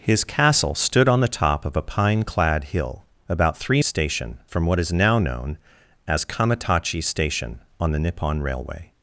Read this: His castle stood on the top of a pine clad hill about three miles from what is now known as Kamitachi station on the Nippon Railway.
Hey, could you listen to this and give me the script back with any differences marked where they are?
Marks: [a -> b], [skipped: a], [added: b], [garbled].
His castle stood on the top of a pine clad hill about three [miles -> station] from what is now known as Kamitachi station on the Nippon Railway.